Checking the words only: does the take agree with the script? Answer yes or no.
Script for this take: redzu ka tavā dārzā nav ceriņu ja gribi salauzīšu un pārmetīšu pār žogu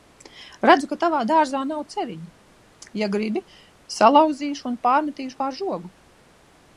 yes